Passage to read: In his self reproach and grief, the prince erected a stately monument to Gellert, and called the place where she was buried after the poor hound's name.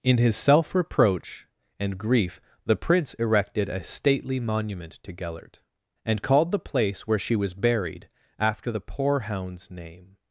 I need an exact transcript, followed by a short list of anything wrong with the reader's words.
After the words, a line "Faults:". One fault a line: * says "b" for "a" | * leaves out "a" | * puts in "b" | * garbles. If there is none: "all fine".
In his self reproach and grief, the prince erected a stately monument to Gellert, and called the place where she was buried after the poor hound's name.
Faults:
all fine